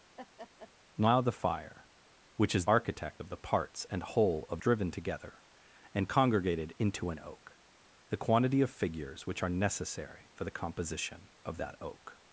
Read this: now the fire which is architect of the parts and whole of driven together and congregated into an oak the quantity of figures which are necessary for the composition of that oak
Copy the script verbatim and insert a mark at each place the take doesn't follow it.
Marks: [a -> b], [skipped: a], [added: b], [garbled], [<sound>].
[laugh] now the fire which is architect of the parts and whole of driven together and congregated into an oak the quantity of figures which are necessary for the composition of that oak